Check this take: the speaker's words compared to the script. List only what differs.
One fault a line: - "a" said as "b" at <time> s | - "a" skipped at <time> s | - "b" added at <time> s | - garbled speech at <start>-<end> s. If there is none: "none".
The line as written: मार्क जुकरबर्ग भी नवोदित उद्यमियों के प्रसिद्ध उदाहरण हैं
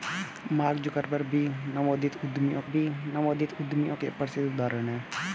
- "भी नवोदित उद्यमियों" added at 2.7 s